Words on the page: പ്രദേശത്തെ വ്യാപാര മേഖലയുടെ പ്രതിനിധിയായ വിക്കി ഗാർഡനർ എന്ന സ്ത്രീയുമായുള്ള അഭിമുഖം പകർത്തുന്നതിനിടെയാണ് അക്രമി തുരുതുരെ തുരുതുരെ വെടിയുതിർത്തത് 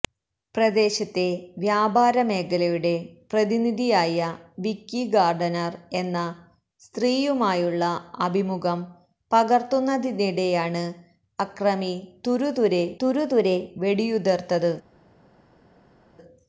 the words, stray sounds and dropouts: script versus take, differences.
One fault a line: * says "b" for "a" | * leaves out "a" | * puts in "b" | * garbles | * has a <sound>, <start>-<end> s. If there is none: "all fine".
all fine